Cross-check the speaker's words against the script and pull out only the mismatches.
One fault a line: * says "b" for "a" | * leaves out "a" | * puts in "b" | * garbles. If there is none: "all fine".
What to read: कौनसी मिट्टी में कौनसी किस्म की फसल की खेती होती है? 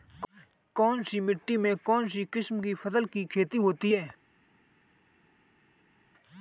all fine